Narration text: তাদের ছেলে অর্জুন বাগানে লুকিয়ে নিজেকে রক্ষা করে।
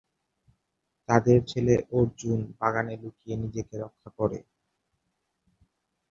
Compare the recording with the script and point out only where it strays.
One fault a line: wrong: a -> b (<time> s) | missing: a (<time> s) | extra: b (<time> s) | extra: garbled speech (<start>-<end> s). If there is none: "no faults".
no faults